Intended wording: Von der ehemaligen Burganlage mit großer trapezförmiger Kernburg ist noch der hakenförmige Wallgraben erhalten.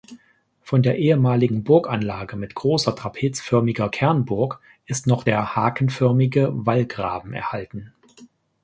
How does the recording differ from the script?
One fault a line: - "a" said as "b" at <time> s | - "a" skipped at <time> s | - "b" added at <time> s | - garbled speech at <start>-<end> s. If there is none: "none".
none